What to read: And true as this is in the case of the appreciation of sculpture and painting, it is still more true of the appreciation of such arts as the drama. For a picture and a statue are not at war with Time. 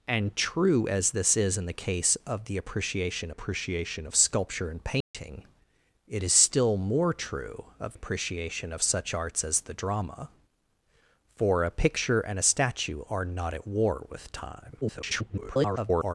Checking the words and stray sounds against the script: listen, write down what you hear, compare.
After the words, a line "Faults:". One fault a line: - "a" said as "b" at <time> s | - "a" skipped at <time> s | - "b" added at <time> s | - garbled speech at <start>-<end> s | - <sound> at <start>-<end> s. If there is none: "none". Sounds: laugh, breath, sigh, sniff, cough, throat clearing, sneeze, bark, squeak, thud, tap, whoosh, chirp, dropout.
And true as this is in the case of the appreciation appreciation of sculpture and painting, it is still more true of appreciation of such arts as the drama. For a picture and a statue are not at war with Time. [garbled]
Faults:
- "appreciation" added at 3.3 s
- dropout at 5.0-5.1 s
- "the" skipped at 8.0 s
- garbled speech at 14.8-16.1 s